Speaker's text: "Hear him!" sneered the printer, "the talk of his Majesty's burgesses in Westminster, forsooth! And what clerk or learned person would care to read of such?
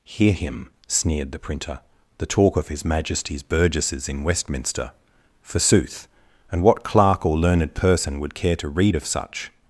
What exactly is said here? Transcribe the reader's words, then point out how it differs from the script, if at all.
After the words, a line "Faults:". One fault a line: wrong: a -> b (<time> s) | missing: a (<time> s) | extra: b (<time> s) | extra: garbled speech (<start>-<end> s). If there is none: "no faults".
"Hear him!" sneered the printer, "the talk of his Majesty's burgesses in Westminster, forsooth! And what clerk or learned person would care to read of such?
Faults:
no faults